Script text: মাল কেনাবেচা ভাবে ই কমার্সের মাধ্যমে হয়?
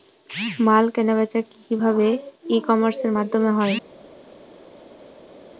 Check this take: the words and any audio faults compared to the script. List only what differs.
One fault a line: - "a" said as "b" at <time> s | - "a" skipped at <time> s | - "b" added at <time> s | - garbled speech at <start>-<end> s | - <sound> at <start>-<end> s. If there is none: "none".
- "কি" added at 1.5 s